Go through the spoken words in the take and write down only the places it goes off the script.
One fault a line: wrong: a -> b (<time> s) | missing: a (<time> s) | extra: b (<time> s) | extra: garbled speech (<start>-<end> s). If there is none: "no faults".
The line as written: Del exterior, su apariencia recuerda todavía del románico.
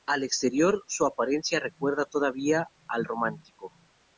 wrong: Del -> Al (0.1 s)
wrong: del -> al (2.9 s)